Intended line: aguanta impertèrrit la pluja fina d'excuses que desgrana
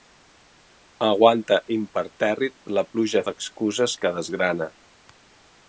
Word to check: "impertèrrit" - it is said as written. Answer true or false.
true